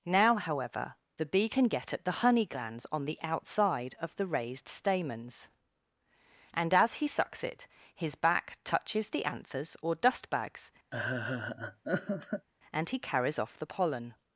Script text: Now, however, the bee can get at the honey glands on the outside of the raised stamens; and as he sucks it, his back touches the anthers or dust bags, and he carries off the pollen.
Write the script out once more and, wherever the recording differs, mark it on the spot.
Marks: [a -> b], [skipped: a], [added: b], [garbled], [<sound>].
Now, however, the bee can get at the honey glands on the outside of the raised stamens; and as he sucks it, his back touches the anthers or dust bags, [laugh] and he carries off the pollen.